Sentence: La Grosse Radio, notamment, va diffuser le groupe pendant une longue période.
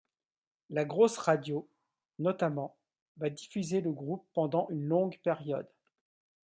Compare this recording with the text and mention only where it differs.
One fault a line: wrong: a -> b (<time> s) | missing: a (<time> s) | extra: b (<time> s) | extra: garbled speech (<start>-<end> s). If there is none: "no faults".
no faults